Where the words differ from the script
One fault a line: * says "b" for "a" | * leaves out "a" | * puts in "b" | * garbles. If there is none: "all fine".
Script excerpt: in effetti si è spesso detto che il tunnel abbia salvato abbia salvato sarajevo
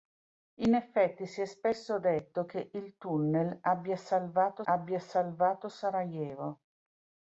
all fine